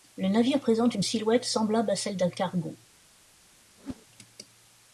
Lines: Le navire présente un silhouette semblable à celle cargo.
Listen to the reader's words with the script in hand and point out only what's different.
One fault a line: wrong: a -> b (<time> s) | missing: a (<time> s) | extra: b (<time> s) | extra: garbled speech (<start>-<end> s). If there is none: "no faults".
wrong: un -> une (0.9 s)
extra: d'un (2.1 s)